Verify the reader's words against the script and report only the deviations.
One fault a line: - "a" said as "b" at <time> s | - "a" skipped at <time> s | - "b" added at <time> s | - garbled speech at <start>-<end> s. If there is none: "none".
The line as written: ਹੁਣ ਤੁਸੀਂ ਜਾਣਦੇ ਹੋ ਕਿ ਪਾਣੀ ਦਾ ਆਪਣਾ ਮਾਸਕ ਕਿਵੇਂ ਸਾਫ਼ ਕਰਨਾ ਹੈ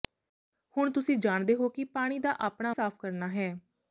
- "ਮਾਸਕ ਕਿਵੇਂ" skipped at 2.7 s